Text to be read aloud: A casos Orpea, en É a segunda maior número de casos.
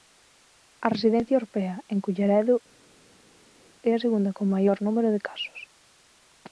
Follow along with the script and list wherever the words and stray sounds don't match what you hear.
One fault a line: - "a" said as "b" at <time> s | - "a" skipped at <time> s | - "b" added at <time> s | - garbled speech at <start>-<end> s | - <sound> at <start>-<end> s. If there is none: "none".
- "casos" said as "residencia" at 0.9 s
- "Culleredo" added at 2.0 s
- "con" added at 4.4 s